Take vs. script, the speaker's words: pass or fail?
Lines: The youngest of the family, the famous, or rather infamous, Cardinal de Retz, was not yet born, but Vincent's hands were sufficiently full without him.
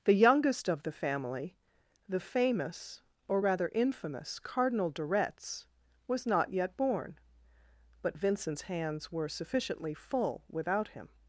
pass